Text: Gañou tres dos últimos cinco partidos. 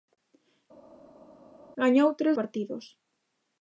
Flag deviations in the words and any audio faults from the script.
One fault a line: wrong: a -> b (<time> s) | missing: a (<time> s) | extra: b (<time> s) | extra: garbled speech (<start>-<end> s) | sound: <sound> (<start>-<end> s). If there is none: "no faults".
missing: dos últimos cinco (2.3 s)